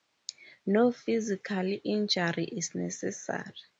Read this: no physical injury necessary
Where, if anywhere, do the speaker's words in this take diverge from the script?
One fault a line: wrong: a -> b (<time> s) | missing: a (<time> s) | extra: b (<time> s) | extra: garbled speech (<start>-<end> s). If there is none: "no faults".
extra: is (2.5 s)